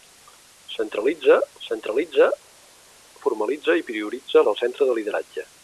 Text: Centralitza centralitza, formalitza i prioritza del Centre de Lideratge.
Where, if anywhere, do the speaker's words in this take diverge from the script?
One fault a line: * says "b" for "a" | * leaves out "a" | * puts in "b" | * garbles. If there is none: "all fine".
all fine